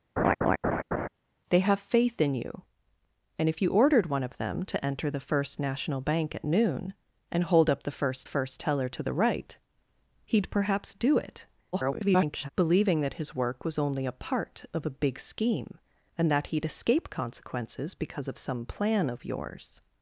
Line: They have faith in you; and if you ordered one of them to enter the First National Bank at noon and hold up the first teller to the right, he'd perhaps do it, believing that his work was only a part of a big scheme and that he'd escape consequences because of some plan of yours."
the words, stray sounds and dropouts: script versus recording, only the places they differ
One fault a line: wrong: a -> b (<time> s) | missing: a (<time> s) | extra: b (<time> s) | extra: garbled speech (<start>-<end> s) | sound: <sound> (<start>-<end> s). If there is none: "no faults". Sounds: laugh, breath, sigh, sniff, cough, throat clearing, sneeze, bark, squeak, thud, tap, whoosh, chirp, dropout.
sound: laugh (0.2-1.1 s)
extra: first (8.2 s)
extra: garbled speech (11.7-12.5 s)